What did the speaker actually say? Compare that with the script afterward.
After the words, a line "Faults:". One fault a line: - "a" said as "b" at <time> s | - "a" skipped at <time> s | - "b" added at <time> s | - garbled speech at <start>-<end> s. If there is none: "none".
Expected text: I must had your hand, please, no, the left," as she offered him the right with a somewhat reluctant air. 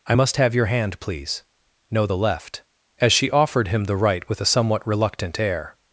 I must have your hand, please, no, the left," as she offered him the right with a somewhat reluctant air.
Faults:
- "had" said as "have" at 0.4 s